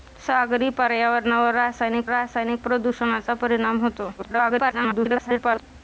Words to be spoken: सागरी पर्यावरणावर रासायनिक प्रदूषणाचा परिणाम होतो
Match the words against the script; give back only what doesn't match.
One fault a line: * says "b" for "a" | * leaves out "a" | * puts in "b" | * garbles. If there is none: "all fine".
* puts in "रासायनिक"
* garbles